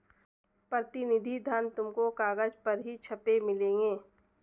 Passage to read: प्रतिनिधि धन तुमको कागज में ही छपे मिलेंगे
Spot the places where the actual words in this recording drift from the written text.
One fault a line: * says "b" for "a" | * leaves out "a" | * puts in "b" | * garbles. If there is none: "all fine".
* says "पर" for "में"